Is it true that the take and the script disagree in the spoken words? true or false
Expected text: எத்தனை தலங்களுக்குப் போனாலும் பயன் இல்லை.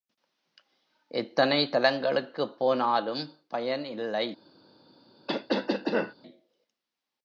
false